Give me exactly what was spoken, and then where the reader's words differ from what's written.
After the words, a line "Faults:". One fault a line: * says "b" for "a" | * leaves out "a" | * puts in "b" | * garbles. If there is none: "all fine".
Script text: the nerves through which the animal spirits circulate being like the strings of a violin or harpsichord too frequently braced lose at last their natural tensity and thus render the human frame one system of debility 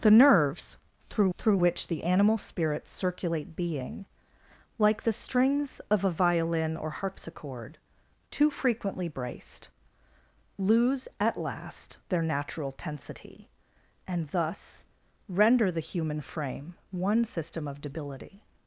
the nerves through through which the animal spirits circulate being like the strings of a violin or harpsichord too frequently braced lose at last their natural tensity and thus render the human frame one system of debility
Faults:
* puts in "through"